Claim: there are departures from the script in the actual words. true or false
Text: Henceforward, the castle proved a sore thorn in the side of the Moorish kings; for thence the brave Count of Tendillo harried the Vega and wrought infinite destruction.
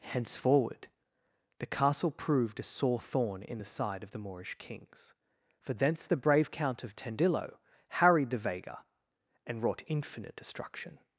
false